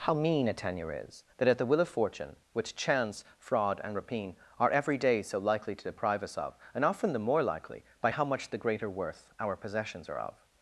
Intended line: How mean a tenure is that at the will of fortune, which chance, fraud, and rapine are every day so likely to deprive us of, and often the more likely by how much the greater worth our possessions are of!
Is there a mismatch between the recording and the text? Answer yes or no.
no